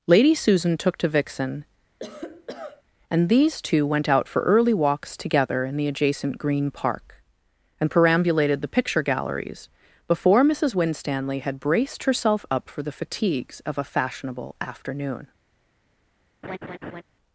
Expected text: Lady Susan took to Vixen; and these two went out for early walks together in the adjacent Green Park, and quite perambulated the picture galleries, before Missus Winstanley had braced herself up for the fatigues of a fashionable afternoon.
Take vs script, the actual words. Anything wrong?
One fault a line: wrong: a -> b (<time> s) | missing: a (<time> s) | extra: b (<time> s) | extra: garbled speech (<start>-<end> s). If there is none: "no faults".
missing: quite (7.9 s)